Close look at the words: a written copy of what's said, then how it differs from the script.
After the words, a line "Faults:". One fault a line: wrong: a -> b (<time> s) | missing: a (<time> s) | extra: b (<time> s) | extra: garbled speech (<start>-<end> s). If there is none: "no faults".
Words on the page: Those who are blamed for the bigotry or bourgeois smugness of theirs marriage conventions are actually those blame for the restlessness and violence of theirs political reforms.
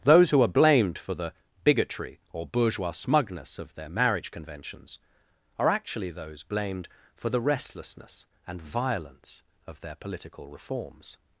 Those who are blamed for the bigotry or bourgeois smugness of their marriage conventions are actually those blamed for the restlessness and violence of their political reforms.
Faults:
wrong: theirs -> their (3.8 s)
wrong: blame -> blamed (6.4 s)
wrong: theirs -> their (9.8 s)